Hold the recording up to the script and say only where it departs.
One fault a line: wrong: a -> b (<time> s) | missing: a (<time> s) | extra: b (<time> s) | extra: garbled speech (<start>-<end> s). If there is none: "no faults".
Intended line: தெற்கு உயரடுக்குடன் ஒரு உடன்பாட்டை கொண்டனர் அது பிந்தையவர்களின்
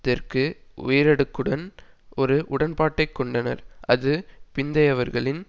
no faults